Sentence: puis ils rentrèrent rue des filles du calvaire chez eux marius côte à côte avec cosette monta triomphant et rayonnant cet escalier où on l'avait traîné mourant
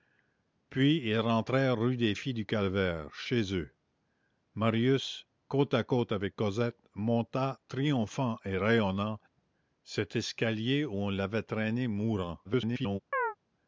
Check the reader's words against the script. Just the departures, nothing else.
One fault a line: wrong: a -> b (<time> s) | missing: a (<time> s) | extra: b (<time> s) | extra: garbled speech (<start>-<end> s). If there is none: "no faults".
extra: garbled speech (12.4-13.0 s)